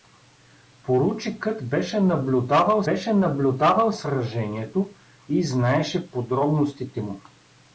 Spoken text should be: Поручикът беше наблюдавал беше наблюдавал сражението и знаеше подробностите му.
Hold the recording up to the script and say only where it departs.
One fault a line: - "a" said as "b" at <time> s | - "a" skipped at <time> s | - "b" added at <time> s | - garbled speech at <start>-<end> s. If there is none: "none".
none